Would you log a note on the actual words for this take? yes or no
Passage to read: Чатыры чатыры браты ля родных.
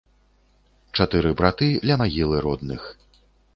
yes